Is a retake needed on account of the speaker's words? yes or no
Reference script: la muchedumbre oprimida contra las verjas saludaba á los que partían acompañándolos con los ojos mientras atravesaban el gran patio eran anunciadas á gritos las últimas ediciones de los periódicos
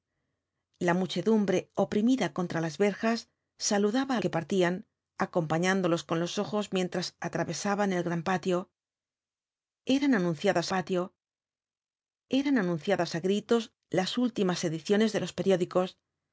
yes